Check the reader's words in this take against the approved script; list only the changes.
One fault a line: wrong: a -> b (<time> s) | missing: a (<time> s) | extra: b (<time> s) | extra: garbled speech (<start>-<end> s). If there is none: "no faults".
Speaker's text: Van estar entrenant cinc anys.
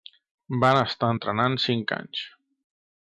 no faults